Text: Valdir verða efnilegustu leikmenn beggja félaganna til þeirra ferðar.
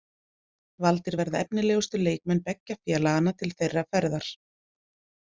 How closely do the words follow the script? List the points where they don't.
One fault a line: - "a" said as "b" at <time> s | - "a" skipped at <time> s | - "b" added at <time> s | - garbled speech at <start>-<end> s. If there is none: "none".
none